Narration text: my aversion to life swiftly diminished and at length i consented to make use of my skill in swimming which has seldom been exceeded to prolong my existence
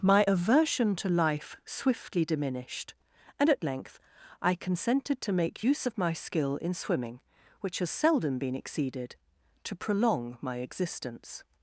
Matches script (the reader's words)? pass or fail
pass